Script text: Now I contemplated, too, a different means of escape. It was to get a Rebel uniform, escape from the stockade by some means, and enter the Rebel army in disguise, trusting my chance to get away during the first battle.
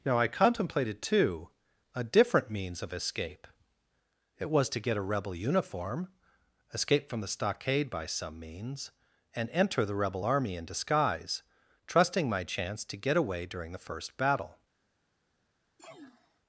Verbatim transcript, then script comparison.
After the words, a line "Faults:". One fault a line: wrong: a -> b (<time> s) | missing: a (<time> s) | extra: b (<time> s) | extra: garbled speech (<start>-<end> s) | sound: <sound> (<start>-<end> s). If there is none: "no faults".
Now I contemplated, too, a different means of escape. It was to get a Rebel uniform, escape from the stockade by some means, and enter the Rebel army in disguise, trusting my chance to get away during the first battle.
Faults:
sound: sneeze (15.8-16.4 s)